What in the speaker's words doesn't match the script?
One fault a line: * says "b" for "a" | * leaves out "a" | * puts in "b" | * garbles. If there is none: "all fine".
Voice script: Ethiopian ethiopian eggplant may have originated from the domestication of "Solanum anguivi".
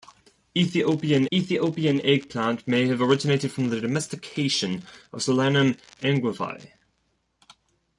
all fine